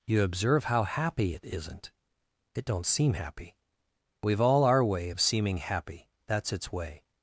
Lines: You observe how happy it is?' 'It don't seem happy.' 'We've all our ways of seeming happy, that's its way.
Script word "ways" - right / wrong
wrong